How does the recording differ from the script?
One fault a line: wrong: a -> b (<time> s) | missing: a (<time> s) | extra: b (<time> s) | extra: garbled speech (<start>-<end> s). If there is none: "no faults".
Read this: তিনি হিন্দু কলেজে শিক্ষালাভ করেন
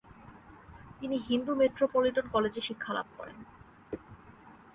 extra: মেট্রোপলিটন (1.6 s)